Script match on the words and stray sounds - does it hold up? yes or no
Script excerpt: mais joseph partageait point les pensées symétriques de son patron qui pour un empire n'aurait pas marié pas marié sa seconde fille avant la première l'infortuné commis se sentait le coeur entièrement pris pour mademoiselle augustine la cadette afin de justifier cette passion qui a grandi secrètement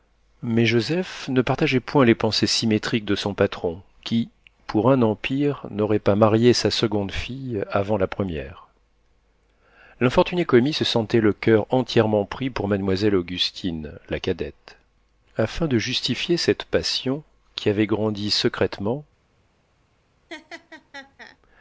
no